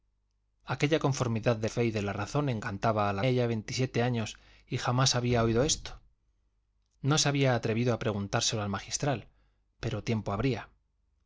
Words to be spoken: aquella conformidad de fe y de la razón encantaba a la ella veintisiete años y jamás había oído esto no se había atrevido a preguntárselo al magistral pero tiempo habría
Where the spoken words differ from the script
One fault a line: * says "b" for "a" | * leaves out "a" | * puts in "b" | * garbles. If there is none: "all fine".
all fine